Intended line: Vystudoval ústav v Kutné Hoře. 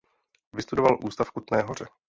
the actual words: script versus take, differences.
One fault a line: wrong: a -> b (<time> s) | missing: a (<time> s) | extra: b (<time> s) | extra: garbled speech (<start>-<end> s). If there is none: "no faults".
no faults